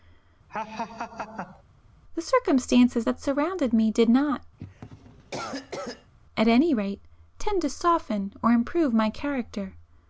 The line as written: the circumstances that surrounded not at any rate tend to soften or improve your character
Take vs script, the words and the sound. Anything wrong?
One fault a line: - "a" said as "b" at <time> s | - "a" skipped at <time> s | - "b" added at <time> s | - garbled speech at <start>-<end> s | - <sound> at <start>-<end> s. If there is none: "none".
- laugh at 0.5-1.6 s
- "me did" added at 3.7 s
- cough at 4.6-6.1 s
- "your" said as "my" at 8.9 s